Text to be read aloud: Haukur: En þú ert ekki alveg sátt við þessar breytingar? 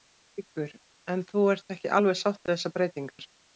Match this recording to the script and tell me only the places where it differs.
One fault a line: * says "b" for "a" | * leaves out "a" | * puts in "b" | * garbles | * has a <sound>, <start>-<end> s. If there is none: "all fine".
* has a dropout, 3.1-3.2 s